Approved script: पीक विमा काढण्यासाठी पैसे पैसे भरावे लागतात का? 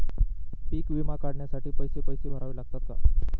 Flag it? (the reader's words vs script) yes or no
no